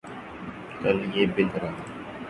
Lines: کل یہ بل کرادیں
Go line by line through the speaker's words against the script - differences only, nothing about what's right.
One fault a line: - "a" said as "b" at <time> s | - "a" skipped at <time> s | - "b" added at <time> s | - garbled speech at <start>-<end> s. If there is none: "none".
none